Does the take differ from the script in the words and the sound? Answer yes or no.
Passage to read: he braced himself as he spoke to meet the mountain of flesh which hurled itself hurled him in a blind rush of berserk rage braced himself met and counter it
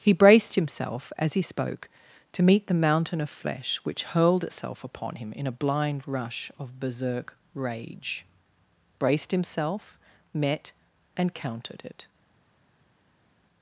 yes